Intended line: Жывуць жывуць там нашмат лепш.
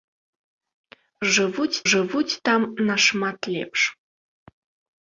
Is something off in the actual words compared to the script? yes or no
no